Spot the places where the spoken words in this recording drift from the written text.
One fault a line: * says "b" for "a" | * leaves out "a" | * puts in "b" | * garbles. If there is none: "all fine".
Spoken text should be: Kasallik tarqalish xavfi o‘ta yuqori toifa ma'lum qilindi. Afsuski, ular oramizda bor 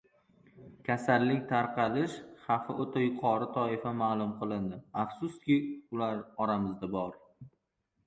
all fine